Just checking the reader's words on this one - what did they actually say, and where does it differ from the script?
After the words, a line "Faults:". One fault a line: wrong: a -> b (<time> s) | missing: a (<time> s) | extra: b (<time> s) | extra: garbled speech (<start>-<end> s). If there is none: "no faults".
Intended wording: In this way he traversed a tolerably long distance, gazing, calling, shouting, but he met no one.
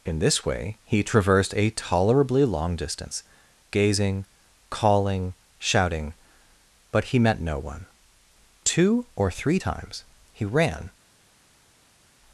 In this way he traversed a tolerably long distance, gazing, calling, shouting, but he met no one. Two or three times he ran
Faults:
extra: Two or three times he ran (8.6 s)